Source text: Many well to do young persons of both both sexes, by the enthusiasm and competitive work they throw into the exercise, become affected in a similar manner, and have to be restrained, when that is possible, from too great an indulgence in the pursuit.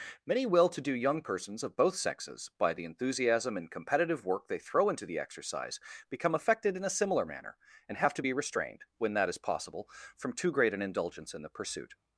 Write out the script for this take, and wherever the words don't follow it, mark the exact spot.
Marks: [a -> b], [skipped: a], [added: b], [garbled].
Many well to do young persons of both [skipped: both] sexes, by the enthusiasm and competitive work they throw into the exercise, become affected in a similar manner, and have to be restrained, when that is possible, from too great an indulgence in the pursuit.